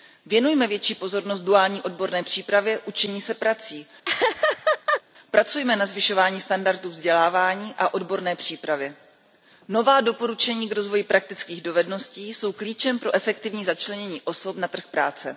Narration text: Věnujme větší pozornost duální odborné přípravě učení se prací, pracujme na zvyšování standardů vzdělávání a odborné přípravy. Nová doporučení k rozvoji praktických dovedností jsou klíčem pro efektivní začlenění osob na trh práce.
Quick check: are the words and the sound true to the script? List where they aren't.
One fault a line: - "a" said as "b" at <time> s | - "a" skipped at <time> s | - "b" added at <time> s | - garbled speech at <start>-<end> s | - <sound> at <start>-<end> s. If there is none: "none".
- laugh at 4.0-5.0 s